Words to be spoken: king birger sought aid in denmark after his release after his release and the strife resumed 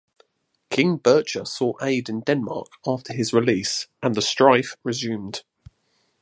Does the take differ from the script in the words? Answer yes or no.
yes